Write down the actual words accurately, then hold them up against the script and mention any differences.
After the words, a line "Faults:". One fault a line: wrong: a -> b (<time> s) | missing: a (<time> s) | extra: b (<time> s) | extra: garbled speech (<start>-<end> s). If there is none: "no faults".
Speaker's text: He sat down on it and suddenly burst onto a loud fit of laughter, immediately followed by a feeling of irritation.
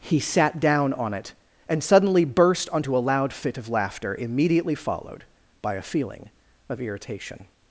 He sat down on it and suddenly burst onto a loud fit of laughter, immediately followed by a feeling of irritation.
Faults:
no faults